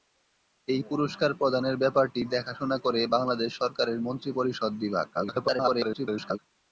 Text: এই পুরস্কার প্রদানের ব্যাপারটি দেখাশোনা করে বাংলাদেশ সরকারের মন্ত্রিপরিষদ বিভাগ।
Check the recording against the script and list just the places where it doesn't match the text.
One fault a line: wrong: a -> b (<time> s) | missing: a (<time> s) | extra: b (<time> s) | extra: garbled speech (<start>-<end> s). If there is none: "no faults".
extra: garbled speech (5.1-6.4 s)